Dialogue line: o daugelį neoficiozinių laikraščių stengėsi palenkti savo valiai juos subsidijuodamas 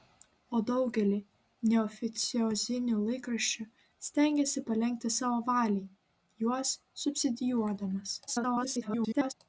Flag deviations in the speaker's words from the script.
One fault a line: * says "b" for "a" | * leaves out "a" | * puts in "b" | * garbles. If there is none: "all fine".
* garbles